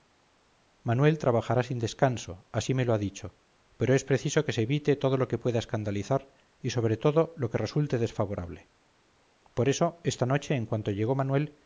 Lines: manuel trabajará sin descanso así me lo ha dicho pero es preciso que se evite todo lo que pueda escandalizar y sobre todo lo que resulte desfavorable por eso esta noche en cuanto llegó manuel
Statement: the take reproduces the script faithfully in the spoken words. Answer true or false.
true